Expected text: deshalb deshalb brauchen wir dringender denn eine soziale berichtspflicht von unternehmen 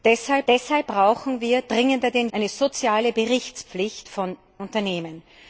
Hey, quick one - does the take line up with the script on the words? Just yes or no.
yes